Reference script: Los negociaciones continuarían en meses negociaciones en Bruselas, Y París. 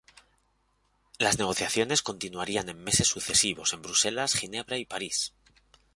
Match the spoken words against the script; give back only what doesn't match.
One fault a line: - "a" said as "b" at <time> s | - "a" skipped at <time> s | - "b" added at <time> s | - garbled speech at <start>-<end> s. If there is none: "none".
- "Los" said as "Las" at 1.2 s
- "negociaciones" said as "sucesivos" at 3.1 s
- "Ginebra" added at 4.3 s